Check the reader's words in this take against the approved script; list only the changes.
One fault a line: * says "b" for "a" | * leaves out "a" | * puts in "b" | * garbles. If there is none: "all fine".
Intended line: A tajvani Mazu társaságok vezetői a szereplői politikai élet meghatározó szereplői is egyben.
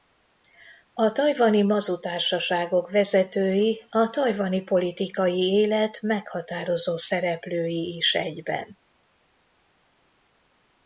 * says "tajvani" for "szereplői"